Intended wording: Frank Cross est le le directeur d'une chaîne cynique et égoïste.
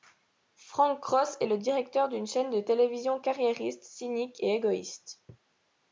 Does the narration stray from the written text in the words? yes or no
yes